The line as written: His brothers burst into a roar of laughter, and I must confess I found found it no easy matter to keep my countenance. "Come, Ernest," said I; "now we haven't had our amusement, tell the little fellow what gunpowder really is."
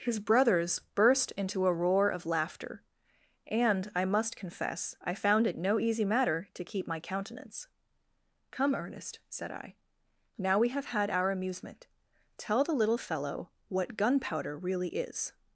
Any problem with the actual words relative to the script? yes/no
yes